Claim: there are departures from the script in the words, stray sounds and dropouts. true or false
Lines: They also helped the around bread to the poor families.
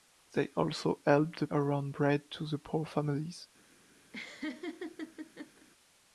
true